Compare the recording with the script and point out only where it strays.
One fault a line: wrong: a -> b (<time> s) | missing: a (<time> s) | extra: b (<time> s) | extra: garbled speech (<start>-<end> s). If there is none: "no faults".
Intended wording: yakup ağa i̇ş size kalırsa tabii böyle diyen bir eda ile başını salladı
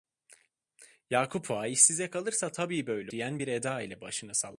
no faults